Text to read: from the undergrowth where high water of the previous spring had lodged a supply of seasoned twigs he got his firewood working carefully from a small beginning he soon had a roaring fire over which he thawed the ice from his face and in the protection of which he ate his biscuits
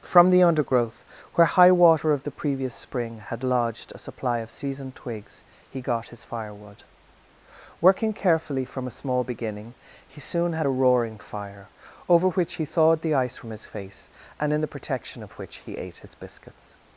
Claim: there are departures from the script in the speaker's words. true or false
false